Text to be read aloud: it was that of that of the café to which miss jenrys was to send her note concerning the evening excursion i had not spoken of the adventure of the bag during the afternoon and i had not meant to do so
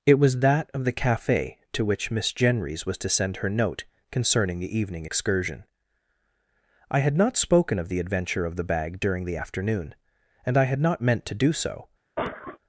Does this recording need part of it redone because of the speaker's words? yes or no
yes